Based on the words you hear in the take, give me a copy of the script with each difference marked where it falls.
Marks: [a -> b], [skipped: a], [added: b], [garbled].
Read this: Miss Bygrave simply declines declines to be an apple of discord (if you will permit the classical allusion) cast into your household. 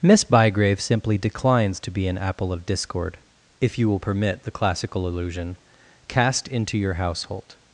Miss Bygrave simply declines [skipped: declines] to be an apple of discord (if you will permit the classical allusion) cast into your household.